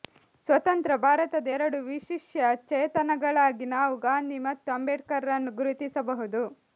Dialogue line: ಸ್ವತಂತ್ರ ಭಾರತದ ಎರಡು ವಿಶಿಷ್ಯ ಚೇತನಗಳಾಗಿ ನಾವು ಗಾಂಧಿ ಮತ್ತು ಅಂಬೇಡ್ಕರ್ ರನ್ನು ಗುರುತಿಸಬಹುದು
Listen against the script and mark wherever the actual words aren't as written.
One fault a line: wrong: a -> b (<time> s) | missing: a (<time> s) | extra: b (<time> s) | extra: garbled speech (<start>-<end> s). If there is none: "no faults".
no faults